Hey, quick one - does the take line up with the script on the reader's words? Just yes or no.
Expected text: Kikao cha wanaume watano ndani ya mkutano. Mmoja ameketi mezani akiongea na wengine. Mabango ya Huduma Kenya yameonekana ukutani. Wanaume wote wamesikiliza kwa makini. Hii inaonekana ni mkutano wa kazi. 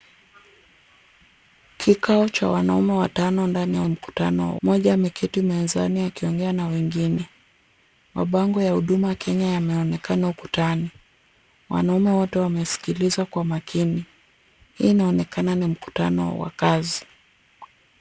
yes